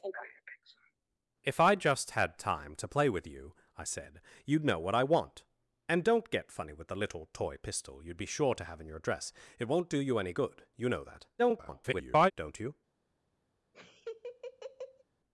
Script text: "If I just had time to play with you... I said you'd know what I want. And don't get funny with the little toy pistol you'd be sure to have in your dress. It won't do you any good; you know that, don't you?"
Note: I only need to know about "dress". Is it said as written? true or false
true